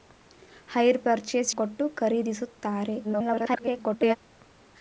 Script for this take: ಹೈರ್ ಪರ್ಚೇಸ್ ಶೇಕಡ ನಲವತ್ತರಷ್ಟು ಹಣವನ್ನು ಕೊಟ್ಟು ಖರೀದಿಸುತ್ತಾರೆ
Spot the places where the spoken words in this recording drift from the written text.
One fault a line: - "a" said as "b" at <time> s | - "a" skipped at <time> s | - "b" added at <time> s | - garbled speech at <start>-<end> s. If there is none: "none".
- "ಶೇಕಡ ನಲವತ್ತರಷ್ಟು ಹಣವನ್ನು" skipped at 1.5 s
- garbled speech at 3.0-4.2 s